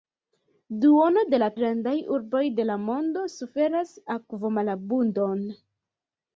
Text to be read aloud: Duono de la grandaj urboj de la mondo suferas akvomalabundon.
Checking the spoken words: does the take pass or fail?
pass